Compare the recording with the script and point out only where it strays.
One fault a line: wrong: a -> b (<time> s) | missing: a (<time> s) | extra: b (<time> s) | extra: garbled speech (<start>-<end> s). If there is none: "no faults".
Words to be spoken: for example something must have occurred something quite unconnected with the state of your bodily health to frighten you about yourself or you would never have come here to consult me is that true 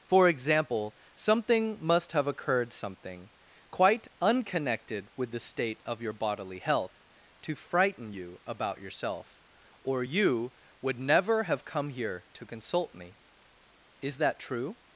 no faults